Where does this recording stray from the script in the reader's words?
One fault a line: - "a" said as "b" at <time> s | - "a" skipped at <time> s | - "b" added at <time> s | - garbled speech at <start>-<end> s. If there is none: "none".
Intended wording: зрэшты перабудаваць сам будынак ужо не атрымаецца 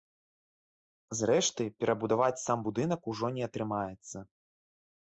none